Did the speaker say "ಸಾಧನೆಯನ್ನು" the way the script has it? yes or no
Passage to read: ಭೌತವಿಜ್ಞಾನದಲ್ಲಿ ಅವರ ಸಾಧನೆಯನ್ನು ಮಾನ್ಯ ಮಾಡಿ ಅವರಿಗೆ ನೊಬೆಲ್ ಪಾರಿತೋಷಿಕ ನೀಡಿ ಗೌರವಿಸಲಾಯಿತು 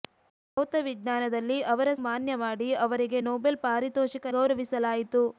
no